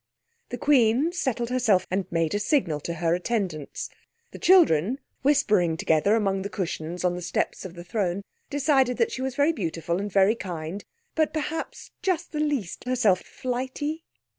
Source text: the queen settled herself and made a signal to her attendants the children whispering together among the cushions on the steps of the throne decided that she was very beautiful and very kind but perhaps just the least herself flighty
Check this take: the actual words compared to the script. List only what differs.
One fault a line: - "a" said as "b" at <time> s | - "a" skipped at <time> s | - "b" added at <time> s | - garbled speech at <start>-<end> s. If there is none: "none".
none